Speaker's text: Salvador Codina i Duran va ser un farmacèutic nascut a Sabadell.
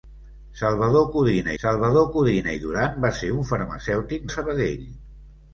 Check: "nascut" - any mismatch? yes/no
yes